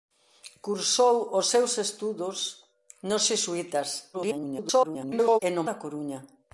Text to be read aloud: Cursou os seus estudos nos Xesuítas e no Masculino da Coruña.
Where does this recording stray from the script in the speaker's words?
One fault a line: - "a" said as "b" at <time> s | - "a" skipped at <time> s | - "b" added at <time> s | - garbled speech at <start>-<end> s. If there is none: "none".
- garbled speech at 4.1-5.4 s
- "Masculino" skipped at 5.6 s